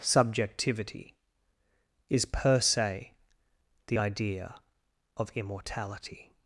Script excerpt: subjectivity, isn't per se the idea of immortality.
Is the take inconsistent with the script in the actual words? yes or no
yes